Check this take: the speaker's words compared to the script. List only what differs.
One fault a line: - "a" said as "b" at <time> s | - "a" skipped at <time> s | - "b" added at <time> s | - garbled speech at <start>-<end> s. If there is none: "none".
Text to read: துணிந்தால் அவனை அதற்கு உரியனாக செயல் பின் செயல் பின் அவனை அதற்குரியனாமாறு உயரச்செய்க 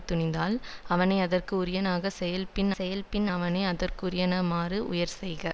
none